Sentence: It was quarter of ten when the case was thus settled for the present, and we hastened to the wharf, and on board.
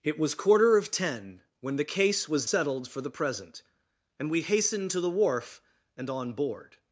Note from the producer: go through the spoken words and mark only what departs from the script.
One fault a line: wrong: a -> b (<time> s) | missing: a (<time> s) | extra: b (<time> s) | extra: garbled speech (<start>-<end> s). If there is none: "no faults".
missing: thus (2.5 s)